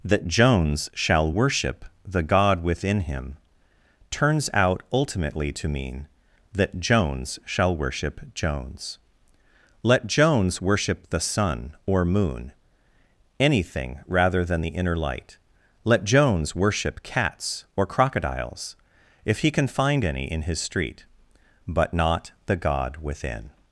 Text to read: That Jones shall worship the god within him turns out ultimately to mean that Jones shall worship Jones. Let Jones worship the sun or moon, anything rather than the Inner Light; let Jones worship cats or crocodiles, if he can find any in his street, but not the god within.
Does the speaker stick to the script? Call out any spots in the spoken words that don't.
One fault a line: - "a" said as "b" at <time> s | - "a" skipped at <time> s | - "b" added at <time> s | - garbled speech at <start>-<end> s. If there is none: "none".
none